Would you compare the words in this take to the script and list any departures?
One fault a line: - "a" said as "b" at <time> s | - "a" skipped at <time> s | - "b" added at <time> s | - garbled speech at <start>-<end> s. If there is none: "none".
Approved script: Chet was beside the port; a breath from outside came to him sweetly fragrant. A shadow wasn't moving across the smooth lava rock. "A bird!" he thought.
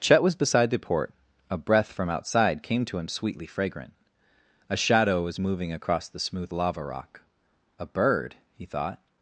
- "wasn't" said as "was" at 5.2 s